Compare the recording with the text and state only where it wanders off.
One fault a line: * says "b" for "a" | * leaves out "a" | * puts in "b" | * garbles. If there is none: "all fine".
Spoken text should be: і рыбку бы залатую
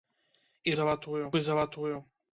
* says "залатую" for "рыбку"